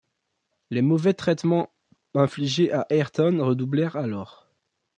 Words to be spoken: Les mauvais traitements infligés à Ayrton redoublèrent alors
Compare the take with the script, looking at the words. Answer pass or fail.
pass